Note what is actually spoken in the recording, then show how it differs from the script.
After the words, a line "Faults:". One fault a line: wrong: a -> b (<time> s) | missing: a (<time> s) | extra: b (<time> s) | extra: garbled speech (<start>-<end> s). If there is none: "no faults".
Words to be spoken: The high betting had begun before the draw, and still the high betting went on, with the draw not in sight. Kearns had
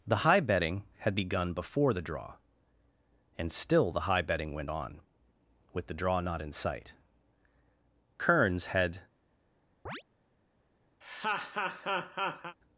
The high betting had begun before the draw, and still the high betting went on, with the draw not in sight. Kearns had
Faults:
no faults